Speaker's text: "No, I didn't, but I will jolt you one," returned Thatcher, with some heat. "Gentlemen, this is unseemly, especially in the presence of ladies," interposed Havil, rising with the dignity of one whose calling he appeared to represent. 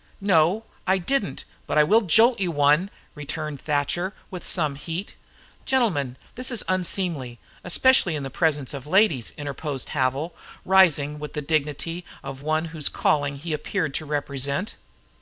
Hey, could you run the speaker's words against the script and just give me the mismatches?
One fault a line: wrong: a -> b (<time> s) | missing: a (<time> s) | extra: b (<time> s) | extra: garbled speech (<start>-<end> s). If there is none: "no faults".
no faults